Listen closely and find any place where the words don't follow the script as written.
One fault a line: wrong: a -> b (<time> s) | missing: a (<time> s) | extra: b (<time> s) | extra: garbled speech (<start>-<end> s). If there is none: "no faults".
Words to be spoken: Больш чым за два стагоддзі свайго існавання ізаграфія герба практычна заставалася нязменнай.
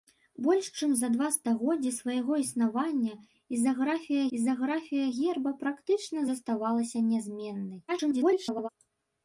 extra: ізаграфія (4.4 s)
extra: garbled speech (7.9-8.7 s)